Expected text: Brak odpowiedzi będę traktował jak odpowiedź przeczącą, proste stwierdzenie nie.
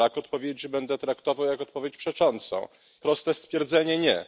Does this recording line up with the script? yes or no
yes